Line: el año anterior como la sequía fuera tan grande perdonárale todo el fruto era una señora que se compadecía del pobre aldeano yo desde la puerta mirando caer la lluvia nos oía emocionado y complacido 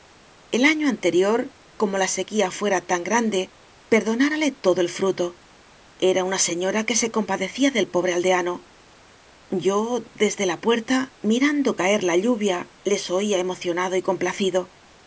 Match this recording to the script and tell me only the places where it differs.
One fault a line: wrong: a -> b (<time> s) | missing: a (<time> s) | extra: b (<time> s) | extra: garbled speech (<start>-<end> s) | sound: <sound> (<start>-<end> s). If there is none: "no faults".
wrong: nos -> les (12.8 s)